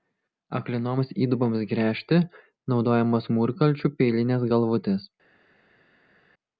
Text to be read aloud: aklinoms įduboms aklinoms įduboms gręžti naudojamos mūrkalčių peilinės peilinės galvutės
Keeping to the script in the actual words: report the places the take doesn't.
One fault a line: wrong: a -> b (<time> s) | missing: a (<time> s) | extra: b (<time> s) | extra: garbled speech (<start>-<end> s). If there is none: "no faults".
missing: aklinoms įduboms (1.7 s)
missing: peilinės (4.5 s)